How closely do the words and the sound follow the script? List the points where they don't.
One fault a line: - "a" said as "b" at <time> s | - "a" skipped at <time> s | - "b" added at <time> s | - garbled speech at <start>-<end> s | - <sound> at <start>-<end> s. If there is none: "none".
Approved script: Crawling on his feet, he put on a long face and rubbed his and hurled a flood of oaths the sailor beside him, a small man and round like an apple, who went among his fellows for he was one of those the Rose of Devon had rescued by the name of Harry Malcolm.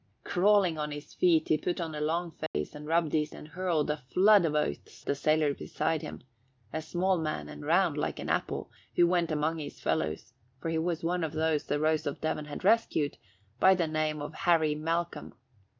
- dropout at 2.5-2.5 s